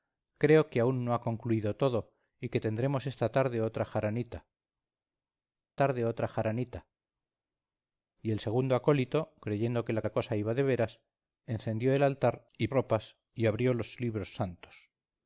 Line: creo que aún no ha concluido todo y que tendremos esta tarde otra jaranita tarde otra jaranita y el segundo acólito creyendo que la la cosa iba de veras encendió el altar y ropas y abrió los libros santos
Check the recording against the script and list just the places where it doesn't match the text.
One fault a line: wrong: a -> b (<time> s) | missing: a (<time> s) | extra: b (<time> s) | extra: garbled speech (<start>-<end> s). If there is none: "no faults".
no faults